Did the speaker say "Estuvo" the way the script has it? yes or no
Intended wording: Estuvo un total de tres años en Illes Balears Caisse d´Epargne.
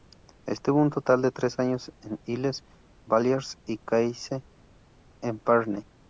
yes